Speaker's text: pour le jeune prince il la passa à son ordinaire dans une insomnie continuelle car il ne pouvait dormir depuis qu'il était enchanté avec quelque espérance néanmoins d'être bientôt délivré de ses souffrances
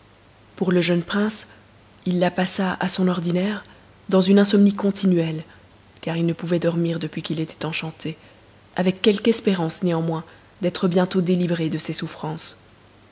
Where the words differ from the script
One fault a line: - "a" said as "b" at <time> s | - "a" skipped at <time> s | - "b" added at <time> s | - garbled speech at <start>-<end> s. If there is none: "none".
none